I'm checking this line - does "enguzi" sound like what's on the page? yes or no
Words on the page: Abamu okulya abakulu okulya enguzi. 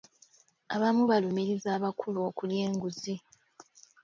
yes